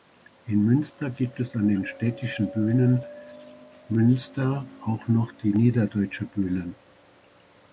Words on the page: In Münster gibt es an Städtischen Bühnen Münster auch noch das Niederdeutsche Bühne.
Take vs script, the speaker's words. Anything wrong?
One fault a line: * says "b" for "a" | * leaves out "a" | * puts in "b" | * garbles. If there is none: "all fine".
* puts in "den"
* says "die" for "das"